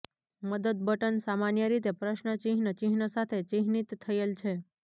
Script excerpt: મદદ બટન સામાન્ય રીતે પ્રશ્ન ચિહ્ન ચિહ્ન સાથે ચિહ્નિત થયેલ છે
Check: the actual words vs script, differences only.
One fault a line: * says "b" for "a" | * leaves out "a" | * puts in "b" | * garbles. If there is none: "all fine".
all fine